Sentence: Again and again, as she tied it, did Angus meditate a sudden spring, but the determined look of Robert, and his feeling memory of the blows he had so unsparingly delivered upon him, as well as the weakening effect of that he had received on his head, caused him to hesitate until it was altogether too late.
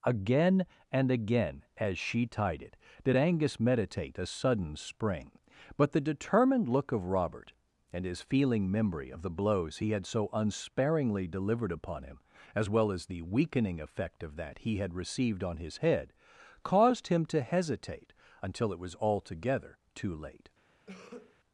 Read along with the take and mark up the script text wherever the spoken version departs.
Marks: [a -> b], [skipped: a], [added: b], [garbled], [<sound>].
Again and again, as she tied it, did Angus meditate a sudden spring, but the determined look of Robert, and his feeling memory of the blows he had so unsparingly delivered upon him, as well as the weakening effect of that he had received on his head, caused him to hesitate until it was altogether too late. [cough]